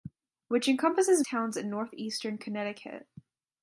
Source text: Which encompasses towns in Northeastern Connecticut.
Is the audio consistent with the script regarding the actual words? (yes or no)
yes